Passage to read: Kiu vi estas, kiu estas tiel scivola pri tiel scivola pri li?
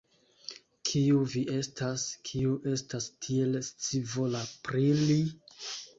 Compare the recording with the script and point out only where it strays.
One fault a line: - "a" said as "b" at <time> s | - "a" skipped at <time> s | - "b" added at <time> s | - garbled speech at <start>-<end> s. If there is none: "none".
- "tiel scivola pri" skipped at 4.8 s